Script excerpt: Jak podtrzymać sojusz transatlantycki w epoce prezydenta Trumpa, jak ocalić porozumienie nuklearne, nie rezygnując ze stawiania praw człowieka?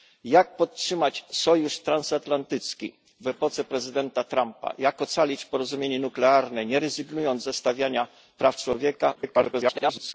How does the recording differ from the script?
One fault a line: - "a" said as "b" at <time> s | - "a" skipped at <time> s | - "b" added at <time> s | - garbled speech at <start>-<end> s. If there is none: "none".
- garbled speech at 9.1-10.1 s